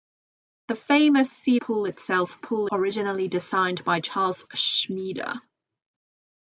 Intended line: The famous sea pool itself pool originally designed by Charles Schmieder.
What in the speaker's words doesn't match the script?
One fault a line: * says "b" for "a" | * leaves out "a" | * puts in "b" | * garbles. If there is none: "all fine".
all fine